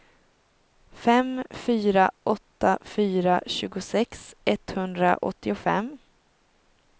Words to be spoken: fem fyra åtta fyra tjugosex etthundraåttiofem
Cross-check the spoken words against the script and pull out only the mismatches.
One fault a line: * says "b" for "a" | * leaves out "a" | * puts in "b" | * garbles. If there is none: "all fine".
all fine